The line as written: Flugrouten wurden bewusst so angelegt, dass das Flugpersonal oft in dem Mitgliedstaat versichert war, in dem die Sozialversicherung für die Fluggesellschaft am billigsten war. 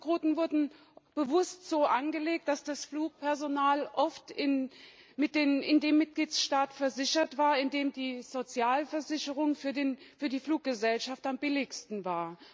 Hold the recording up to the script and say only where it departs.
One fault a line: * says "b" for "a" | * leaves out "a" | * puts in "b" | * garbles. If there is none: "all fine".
all fine